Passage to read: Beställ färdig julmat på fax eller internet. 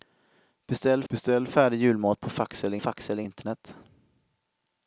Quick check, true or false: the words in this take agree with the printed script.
false